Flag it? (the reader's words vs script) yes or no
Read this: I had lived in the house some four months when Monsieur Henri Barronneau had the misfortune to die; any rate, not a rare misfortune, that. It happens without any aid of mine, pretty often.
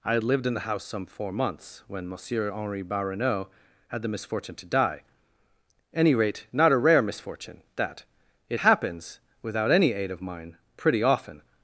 no